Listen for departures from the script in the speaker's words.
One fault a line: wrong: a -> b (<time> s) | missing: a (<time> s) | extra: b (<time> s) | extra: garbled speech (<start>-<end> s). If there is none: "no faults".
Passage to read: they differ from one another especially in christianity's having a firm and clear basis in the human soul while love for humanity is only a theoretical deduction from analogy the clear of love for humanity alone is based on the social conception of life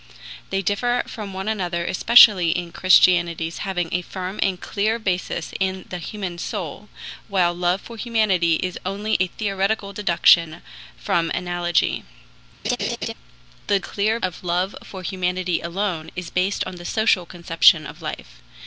no faults